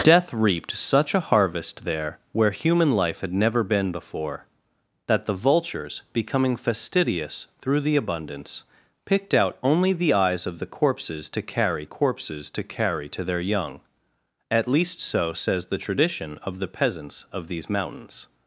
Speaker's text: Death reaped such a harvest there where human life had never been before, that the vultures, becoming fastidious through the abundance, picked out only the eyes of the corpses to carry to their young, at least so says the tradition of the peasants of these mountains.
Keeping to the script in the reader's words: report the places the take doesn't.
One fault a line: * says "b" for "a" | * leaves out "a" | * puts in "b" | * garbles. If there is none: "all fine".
* puts in "corpses to carry"